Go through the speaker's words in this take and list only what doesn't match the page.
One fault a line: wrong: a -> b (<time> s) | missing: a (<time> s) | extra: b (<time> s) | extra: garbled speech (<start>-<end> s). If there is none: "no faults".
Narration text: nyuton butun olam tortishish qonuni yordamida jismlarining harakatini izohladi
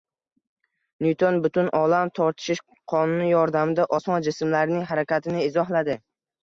extra: osmon (4.0 s)